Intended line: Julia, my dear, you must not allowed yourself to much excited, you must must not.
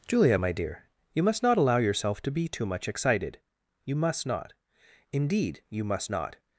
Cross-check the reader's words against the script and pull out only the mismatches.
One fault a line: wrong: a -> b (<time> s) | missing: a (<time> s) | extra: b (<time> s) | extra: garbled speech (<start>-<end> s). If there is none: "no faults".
wrong: allowed -> allow (1.6 s)
extra: be too (2.3 s)
extra: not Indeed you (4.3 s)